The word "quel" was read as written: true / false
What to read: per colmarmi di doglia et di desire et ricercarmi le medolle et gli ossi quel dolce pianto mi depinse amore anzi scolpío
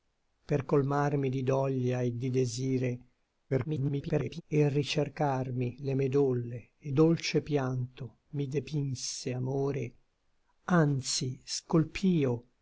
false